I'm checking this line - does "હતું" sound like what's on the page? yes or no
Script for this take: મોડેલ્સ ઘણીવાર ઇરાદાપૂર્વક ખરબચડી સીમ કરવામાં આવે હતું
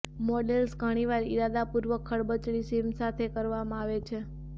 no